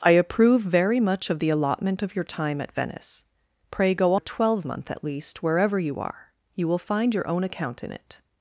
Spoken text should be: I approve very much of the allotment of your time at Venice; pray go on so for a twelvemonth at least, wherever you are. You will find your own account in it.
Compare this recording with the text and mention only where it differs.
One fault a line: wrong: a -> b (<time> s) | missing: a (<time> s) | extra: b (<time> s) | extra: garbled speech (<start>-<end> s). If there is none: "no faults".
missing: on so for (4.2 s)